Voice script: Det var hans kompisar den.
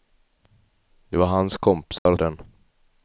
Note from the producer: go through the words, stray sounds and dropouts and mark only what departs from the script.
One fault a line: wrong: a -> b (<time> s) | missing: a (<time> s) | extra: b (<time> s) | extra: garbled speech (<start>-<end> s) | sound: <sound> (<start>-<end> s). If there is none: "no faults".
sound: dropout (2.0-2.1 s)